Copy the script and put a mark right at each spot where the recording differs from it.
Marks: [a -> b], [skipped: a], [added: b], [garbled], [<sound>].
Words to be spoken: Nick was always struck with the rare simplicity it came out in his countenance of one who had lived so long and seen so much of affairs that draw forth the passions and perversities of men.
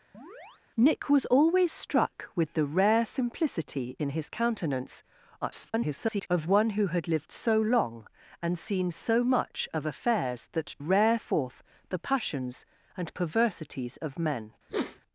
[chirp] Nick was always struck with the rare simplicity [skipped: it came out] in his countenance [garbled] of one who had lived so long and seen so much of affairs that [draw -> rare] forth the passions and perversities of men. [sniff]